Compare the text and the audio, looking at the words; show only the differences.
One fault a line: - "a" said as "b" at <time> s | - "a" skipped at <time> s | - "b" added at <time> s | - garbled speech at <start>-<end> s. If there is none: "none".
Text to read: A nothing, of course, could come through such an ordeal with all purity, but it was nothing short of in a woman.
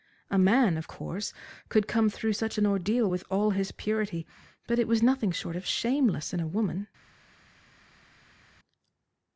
- "nothing" said as "man" at 0.4 s
- "his" added at 3.5 s
- "shameless" added at 5.7 s